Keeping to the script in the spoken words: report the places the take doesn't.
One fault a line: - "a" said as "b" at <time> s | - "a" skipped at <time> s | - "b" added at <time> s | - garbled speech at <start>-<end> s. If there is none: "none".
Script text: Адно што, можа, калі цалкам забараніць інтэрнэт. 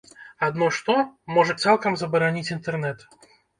- "калі" skipped at 1.6 s